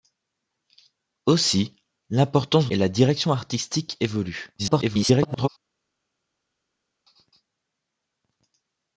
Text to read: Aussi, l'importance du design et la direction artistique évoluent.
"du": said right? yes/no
no